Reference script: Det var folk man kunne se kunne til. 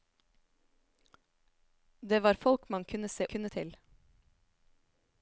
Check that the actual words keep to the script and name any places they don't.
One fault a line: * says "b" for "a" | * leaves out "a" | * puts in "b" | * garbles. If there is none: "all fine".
all fine